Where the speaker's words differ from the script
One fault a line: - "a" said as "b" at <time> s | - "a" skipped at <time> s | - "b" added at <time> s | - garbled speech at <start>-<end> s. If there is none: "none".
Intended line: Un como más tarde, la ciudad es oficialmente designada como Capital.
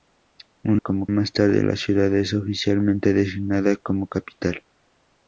none